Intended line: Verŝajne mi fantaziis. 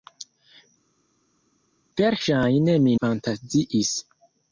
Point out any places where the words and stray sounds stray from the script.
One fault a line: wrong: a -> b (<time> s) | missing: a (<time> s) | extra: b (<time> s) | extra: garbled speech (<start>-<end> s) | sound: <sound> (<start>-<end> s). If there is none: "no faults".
no faults